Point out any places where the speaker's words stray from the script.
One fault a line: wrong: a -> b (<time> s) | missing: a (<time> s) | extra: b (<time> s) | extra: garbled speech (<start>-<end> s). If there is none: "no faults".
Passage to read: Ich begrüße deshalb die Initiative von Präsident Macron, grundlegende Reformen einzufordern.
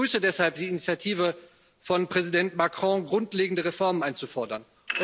no faults